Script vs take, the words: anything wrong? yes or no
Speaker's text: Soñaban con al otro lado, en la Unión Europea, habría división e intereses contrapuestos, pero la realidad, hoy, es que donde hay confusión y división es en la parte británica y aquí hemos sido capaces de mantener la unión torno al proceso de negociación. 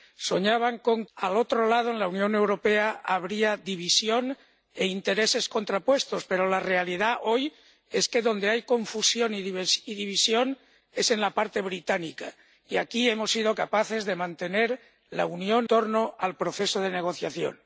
no